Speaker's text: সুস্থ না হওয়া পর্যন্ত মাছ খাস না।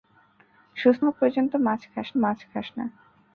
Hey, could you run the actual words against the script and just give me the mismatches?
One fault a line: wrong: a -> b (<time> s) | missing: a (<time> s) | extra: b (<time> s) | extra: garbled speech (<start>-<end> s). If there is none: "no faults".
missing: না (1.0 s)
extra: মাছ খাস (2.2 s)